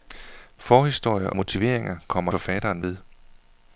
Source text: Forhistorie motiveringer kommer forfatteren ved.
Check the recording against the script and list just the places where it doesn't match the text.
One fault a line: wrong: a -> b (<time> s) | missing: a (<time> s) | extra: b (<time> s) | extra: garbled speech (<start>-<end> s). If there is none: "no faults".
no faults